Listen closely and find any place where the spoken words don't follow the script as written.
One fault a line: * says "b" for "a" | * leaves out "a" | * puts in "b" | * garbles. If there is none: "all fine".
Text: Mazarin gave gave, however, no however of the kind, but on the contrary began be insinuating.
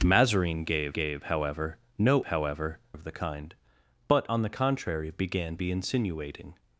all fine